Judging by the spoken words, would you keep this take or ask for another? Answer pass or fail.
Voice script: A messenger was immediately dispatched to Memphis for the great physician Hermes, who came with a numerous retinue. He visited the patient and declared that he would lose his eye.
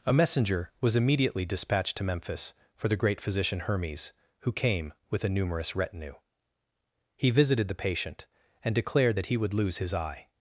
pass